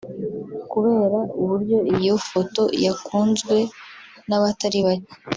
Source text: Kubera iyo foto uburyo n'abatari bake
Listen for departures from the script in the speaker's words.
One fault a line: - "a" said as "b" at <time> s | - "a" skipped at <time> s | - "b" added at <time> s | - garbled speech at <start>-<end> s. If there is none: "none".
- "uburyo" added at 1.4 s
- "uburyo" said as "yakunzwe" at 2.8 s